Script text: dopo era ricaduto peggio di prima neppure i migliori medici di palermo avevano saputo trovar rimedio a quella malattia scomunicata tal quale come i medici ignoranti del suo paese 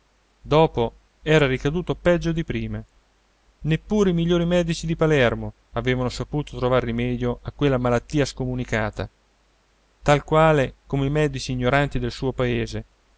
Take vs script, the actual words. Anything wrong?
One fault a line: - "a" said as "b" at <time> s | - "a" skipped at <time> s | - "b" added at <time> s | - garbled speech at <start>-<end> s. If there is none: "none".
none